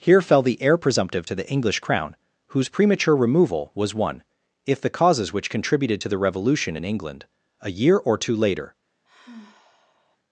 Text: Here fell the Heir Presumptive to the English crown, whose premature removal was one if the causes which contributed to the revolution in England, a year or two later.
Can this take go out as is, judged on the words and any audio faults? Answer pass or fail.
fail